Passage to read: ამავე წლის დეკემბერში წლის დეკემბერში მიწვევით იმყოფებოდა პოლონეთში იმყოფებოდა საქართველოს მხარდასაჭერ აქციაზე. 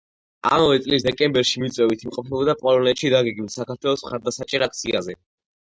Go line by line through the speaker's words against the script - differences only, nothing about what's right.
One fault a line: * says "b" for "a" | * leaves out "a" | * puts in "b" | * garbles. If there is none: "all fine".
* leaves out "წლის დეკემბერში"
* says "დაგეგმილ" for "იმყოფებოდა"